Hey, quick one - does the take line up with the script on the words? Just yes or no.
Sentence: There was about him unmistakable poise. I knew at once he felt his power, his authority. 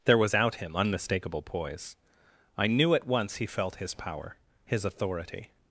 no